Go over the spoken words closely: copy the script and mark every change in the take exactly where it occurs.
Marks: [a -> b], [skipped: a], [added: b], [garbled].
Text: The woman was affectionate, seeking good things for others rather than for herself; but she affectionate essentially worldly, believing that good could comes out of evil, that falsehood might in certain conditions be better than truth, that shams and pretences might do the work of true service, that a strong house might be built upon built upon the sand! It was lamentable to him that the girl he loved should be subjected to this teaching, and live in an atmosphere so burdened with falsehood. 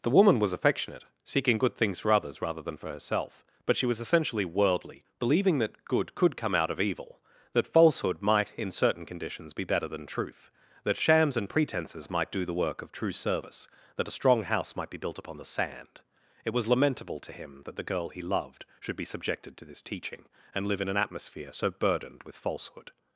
The woman was affectionate, seeking good things for others rather than for herself; but she [affectionate -> was] essentially worldly, believing that good could [comes -> come] out of evil, that falsehood might in certain conditions be better than truth, that shams and pretences might do the work of true service, that a strong house might be built upon [skipped: built upon] the sand! It was lamentable to him that the girl he loved should be subjected to this teaching, and live in an atmosphere so burdened with falsehood.